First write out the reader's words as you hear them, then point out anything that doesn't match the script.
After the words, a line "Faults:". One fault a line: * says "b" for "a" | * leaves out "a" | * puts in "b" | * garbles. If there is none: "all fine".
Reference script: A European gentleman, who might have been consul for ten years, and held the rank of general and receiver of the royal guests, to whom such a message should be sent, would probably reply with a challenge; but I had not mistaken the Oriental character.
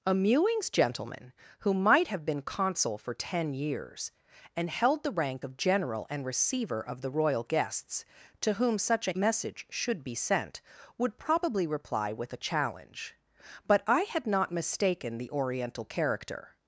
A Mewings gentleman, who might have been consul for ten years, and held the rank of general and receiver of the royal guests, to whom such a message should be sent, would probably reply with a challenge; but I had not mistaken the Oriental character.
Faults:
* says "Mewings" for "European"